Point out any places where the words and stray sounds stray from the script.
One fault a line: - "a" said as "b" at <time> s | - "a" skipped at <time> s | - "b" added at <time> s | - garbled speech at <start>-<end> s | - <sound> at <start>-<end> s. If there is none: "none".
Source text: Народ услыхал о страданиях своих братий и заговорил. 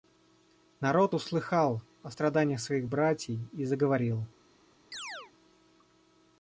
- chirp at 4.9-5.3 s